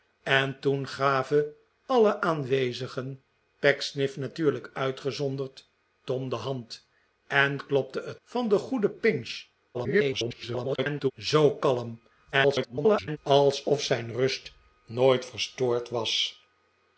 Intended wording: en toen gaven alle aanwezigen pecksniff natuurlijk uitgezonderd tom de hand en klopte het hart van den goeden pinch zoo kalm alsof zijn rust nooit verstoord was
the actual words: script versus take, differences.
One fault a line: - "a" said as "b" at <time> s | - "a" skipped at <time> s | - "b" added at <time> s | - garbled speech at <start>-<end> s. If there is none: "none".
- "hart" skipped at 8.2 s
- garbled speech at 9.7-11.1 s
- garbled speech at 12.3-13.2 s